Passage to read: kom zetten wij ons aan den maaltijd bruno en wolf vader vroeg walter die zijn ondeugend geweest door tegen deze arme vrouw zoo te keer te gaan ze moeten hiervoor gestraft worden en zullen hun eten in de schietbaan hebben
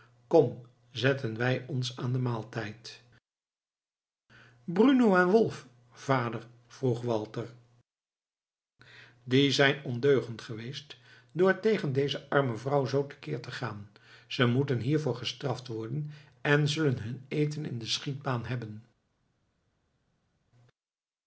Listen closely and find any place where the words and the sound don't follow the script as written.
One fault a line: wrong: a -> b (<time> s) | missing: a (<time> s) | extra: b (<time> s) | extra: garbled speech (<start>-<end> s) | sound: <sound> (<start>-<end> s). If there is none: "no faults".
no faults